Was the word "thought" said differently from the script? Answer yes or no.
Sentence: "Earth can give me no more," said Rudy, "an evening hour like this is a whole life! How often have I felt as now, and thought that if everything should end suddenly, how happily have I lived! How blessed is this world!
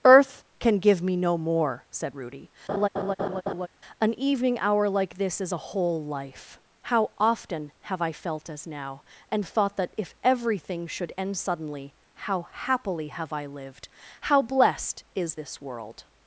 no